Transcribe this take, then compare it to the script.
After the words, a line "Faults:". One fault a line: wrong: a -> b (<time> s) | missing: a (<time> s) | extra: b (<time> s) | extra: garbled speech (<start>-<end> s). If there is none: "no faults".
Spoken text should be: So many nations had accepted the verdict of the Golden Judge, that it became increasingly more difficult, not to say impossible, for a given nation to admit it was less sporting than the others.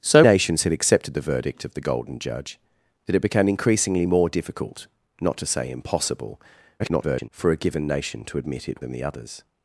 So nations had accepted the verdict of the Golden Judge, that it became increasingly more difficult, not to say impossible, [garbled] for a given nation to admit it than the others.
Faults:
missing: many (0.2 s)
extra: garbled speech (6.8-7.3 s)
missing: was less sporting (8.8 s)